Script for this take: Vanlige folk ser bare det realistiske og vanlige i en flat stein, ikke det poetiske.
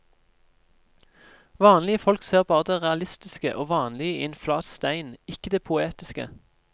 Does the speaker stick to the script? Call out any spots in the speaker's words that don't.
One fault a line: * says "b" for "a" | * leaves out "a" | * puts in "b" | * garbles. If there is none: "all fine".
all fine